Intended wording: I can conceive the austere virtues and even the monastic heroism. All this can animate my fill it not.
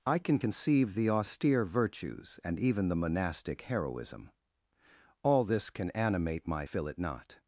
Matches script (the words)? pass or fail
pass